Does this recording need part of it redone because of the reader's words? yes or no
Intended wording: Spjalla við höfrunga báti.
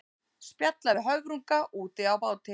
yes